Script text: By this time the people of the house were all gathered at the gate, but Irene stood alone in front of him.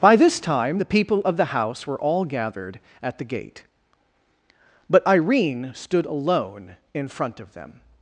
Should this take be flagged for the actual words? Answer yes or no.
yes